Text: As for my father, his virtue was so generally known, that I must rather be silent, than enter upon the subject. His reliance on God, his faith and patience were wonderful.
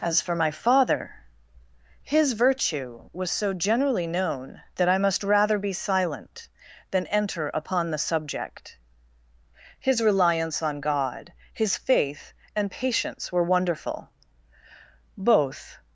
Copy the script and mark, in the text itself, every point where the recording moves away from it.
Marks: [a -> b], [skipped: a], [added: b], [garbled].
As for my father, his virtue was so generally known, that I must rather be silent, than enter upon the subject. His reliance on God, his faith and patience were wonderful. [added: Both]